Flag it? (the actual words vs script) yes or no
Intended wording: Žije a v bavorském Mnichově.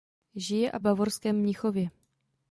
no